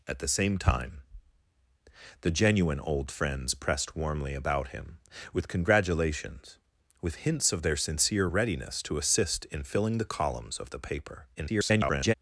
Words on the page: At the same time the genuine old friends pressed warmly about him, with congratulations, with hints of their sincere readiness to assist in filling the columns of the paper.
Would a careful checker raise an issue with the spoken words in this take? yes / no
yes